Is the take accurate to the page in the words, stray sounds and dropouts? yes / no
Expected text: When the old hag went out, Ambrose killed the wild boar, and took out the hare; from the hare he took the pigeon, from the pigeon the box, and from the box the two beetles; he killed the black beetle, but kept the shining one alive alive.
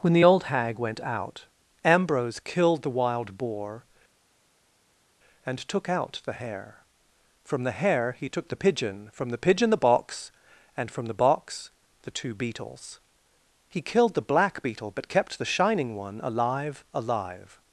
yes